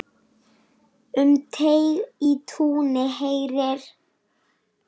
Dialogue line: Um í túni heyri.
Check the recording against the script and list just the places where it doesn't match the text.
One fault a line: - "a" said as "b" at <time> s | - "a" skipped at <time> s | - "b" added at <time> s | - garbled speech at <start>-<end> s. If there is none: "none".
- "teig" added at 1.6 s